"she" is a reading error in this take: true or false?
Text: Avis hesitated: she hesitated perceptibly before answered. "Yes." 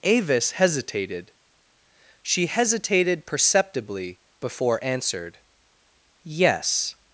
false